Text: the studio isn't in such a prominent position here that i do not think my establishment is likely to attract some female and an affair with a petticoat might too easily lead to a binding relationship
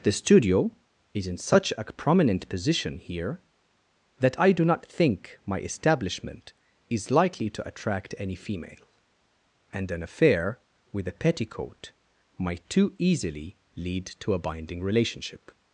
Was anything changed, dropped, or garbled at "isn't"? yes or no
yes